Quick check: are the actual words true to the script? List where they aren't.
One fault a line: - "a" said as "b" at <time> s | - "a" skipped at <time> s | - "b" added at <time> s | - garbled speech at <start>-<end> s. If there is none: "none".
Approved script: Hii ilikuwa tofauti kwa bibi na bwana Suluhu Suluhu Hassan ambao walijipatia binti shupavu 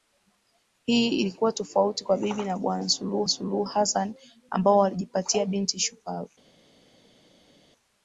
none